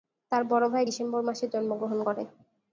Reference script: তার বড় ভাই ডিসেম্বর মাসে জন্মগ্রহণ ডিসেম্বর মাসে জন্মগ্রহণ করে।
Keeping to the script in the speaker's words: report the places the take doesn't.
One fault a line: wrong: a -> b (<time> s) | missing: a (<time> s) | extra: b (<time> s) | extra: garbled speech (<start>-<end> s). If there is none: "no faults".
missing: ডিসেম্বর মাসে জন্মগ্রহণ (2.0 s)